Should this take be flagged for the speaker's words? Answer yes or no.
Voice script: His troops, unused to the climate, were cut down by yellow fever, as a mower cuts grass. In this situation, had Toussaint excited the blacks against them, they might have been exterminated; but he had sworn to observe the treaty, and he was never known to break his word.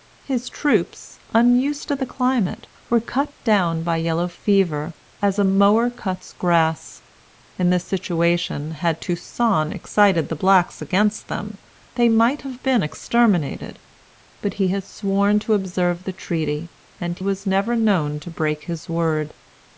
yes